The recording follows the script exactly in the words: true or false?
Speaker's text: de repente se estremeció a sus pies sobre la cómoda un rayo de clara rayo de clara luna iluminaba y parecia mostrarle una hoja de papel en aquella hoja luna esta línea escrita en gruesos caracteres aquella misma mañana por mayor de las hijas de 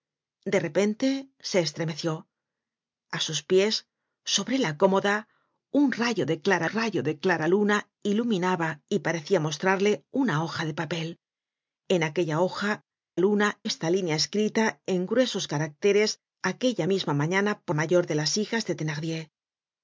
true